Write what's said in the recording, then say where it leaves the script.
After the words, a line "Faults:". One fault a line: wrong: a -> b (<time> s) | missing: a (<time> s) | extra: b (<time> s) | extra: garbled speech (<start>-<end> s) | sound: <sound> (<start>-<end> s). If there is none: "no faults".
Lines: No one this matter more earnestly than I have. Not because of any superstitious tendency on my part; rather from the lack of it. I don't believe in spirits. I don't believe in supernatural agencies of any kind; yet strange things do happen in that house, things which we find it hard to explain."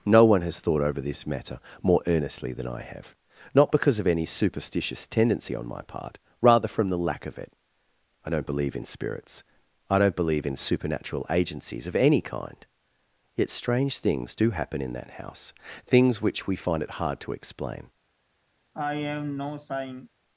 No one has thought over this matter more earnestly than I have. Not because of any superstitious tendency on my part; rather from the lack of it. I don't believe in spirits. I don't believe in supernatural agencies of any kind; yet strange things do happen in that house, things which we find it hard to explain."
Faults:
extra: has thought over (0.4 s)
sound: sigh (18.7-20.1 s)